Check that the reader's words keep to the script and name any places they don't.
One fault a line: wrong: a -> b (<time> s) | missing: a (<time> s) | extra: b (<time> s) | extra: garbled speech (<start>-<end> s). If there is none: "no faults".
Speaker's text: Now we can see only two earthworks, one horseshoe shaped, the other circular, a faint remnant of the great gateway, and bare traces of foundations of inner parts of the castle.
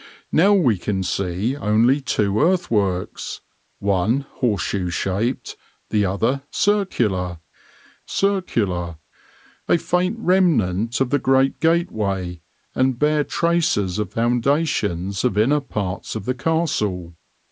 extra: circular (8.0 s)